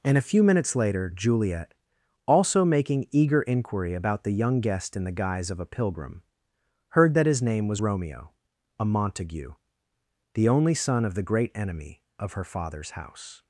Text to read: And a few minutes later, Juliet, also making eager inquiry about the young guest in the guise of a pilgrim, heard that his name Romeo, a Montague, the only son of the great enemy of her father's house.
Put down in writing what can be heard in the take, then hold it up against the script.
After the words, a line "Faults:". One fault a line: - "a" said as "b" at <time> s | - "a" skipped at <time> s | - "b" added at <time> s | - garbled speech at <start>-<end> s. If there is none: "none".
And a few minutes later, Juliet, also making eager inquiry about the young guest in the guise of a pilgrim, heard that his name was Romeo, a Montague, the only son of the great enemy of her father's house.
Faults:
- "was" added at 7.7 s